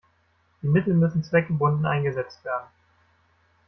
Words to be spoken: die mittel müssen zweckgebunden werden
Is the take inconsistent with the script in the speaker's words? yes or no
yes